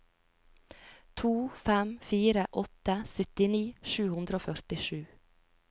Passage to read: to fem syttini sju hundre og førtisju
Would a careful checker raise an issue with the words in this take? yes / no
yes